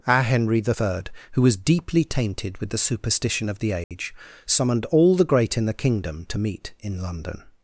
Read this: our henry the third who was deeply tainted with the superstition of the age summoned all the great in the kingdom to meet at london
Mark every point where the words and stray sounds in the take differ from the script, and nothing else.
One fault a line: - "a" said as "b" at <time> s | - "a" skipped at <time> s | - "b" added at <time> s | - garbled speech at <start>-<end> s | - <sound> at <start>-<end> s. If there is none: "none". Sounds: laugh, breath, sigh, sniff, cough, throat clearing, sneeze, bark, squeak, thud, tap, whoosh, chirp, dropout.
- dropout at 3.8-3.9 s
- "at" said as "in" at 6.8 s